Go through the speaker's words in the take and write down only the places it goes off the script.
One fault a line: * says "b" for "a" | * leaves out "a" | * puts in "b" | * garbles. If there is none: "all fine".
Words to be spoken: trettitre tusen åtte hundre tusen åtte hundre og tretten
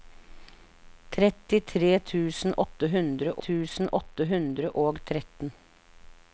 all fine